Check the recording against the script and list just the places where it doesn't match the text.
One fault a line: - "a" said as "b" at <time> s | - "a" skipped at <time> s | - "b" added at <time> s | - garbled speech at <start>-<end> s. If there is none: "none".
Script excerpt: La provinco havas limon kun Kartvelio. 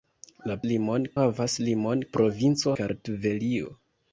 - "provinco" said as "limon" at 0.7 s
- "kun" said as "provinco" at 2.2 s